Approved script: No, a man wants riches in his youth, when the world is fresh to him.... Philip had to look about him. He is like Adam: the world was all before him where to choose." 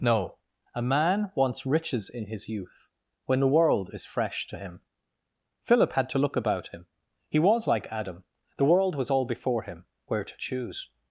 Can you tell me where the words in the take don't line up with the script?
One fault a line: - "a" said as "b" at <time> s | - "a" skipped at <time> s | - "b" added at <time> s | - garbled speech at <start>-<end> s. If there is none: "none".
- "is" said as "was" at 7.4 s